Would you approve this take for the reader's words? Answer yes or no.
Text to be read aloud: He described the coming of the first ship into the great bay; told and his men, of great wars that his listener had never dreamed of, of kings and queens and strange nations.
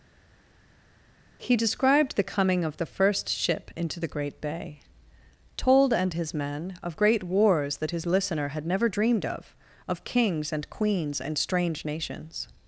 yes